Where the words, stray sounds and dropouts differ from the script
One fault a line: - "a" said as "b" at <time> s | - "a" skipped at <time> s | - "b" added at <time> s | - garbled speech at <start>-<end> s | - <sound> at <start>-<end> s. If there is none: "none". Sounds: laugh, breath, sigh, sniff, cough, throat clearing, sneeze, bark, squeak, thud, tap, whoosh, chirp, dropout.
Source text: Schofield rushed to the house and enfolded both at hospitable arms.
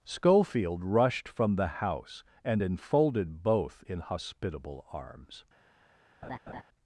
- "to" said as "from" at 1.3 s
- "at" said as "in" at 3.9 s
- laugh at 6.2-6.6 s